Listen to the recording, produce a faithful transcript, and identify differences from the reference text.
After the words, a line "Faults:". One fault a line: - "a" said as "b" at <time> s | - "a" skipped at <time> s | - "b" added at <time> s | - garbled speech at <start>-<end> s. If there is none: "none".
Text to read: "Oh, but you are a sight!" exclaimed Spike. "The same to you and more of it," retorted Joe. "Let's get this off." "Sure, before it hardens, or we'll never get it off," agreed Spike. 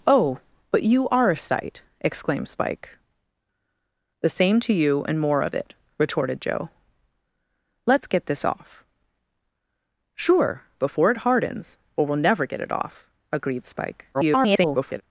"Oh, but you are a sight!" exclaimed Spike. "The same to you and more of it," retorted Joe. "Let's get this off." "Sure, before it hardens, or we'll never get it off," agreed Spike. [garbled]
Faults:
- garbled speech at 14.1-15.0 s